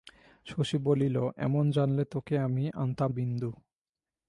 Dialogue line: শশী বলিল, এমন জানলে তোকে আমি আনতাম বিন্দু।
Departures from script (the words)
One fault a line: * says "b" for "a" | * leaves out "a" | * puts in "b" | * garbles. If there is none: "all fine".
all fine